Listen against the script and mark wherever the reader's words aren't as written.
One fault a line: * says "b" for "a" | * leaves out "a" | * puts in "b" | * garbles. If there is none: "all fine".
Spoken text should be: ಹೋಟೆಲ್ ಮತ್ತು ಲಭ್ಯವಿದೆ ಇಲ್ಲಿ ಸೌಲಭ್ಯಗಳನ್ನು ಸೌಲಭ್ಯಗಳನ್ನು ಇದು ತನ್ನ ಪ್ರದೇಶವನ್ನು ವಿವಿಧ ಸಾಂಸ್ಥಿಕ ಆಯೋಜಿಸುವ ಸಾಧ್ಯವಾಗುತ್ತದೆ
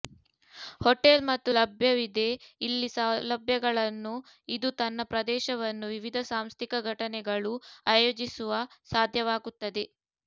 * leaves out "ಸೌಲಭ್ಯಗಳನ್ನು"
* puts in "ಘಟನೆಗಳು"